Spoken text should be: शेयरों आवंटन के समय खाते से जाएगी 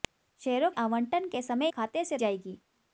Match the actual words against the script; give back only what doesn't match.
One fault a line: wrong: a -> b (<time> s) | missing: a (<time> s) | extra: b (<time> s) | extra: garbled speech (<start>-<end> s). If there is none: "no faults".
no faults